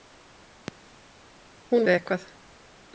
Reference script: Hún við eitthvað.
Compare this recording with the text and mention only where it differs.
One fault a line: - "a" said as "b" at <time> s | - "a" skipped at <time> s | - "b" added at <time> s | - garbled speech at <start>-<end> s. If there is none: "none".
none